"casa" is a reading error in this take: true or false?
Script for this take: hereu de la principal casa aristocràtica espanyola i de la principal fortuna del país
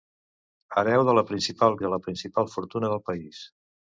true